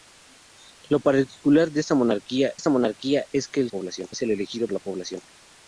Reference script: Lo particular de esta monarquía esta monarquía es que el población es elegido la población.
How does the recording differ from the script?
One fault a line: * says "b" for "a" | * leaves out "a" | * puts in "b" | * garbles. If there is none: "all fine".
all fine